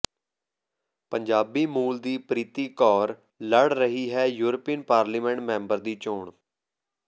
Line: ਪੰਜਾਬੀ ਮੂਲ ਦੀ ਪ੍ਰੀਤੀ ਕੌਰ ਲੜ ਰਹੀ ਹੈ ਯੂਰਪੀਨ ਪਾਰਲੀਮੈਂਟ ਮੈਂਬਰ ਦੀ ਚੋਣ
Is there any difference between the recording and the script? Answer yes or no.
no